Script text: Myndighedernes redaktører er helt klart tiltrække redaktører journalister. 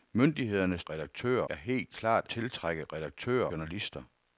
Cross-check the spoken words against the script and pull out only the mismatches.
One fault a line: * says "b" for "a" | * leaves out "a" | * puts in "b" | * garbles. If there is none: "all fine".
all fine